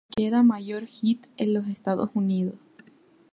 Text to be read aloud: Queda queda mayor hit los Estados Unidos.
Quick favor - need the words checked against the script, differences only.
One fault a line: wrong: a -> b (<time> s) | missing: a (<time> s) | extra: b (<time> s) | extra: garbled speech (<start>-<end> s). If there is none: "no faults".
missing: queda (0.4 s)
extra: en (1.4 s)